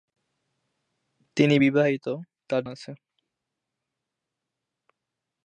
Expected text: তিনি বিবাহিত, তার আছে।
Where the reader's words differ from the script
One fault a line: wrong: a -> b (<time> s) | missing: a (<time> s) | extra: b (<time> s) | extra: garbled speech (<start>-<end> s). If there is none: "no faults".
no faults